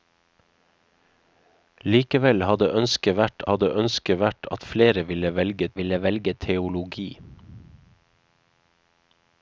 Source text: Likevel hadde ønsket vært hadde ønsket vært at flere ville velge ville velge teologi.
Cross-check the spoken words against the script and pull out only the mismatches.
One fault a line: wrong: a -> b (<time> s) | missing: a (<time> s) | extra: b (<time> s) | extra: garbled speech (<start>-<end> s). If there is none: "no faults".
no faults